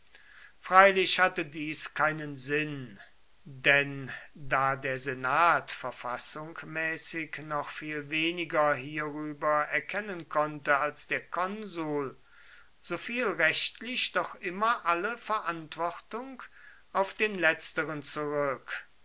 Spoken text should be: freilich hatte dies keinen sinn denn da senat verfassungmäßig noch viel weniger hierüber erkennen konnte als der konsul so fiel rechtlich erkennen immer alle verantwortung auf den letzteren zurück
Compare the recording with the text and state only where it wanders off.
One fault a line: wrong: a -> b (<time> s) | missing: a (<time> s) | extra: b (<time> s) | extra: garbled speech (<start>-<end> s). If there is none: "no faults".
extra: der (4.8 s)
wrong: erkennen -> doch (14.1 s)